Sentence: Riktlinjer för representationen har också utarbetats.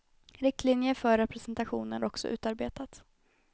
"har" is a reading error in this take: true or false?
true